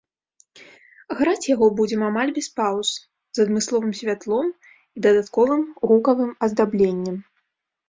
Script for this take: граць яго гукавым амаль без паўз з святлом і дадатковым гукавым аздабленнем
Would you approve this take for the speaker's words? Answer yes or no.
no